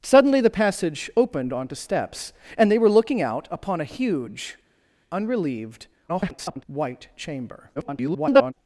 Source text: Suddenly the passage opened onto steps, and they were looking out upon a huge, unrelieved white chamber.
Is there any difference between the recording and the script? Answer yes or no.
yes